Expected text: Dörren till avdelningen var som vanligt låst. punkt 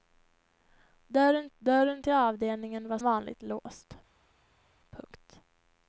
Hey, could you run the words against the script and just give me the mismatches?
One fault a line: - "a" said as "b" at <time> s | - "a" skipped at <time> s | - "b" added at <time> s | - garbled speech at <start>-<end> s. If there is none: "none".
- "dörren" added at 1.6 s
- "som" skipped at 3.0 s